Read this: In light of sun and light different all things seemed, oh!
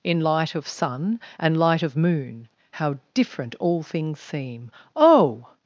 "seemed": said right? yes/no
no